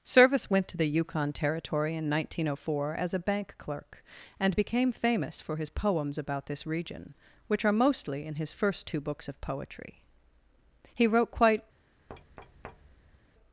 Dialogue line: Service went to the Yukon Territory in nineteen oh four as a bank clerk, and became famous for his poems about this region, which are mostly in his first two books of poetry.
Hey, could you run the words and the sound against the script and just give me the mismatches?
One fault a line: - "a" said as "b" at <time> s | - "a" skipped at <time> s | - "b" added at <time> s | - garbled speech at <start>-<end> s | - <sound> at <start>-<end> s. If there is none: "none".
- "He wrote quite" added at 11.0 s
- thud at 12.1-13.2 s